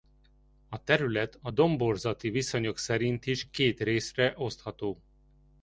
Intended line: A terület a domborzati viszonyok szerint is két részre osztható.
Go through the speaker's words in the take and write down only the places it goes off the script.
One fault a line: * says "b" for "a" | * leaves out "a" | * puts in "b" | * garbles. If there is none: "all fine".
all fine